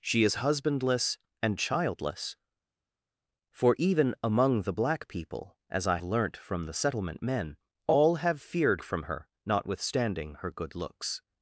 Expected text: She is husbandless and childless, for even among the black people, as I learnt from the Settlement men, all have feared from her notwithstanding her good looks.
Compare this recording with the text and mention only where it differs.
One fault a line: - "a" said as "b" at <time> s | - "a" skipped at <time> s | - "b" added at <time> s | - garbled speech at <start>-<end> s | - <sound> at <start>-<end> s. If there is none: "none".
none